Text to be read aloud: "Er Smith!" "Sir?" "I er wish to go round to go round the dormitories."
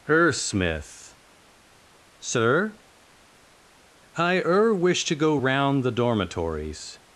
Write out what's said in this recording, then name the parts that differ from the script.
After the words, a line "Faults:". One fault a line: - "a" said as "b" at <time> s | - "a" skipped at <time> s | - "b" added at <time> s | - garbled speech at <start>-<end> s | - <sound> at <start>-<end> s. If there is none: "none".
"Er Smith!" "Sir?" "I er wish to go round the dormitories."
Faults:
- "to go round" skipped at 5.8 s